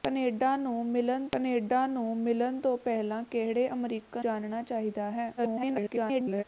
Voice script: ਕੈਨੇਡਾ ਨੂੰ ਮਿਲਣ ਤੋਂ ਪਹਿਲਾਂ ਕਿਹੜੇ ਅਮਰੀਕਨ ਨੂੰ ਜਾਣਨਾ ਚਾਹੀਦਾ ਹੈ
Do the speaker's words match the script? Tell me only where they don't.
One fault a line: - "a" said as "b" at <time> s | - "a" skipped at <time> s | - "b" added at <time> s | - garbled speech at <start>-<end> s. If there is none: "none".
- "ਕੈਨੇਡਾ ਨੂੰ ਮਿਲਣ" added at 1.3 s
- "ਨੂੰ" skipped at 4.2 s
- garbled speech at 5.4-6.4 s